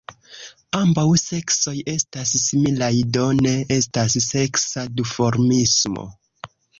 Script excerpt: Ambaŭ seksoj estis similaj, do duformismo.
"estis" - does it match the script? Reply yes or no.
no